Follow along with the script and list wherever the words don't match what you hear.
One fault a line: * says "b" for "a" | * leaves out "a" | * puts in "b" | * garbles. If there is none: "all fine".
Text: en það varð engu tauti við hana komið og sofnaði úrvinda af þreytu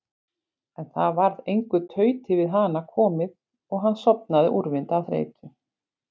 * puts in "hann"